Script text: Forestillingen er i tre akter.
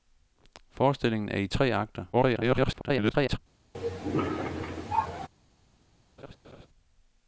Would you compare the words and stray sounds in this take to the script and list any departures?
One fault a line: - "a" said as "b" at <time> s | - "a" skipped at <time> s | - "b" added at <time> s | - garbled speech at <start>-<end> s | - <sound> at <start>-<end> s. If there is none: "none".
- garbled speech at 2.1-3.4 s
- cough at 3.7-5.3 s
- laugh at 6.2-6.7 s